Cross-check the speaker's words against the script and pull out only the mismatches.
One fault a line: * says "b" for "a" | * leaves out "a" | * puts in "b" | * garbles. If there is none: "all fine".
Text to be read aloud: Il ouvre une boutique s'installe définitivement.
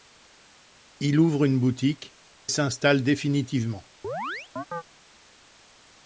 all fine